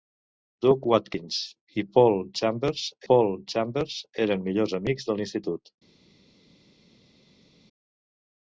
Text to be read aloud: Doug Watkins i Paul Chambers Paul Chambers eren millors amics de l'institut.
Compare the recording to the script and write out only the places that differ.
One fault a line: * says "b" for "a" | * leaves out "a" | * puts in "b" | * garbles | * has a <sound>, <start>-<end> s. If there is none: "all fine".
all fine